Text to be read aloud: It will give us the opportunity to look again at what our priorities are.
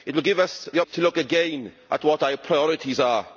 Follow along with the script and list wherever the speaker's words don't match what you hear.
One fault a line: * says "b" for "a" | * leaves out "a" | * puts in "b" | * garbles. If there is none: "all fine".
* leaves out "opportunity"